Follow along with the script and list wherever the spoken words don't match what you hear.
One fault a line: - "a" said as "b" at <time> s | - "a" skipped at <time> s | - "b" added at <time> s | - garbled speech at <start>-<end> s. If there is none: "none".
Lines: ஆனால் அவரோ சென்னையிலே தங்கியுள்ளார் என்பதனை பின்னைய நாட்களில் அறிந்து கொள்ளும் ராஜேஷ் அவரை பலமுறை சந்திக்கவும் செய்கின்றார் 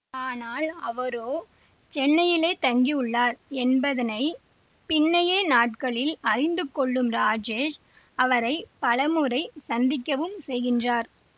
none